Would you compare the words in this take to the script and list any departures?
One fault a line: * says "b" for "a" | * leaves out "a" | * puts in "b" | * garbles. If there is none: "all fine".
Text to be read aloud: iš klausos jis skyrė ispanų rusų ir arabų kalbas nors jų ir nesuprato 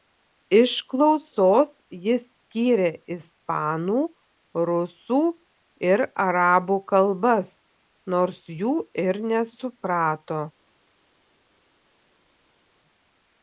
all fine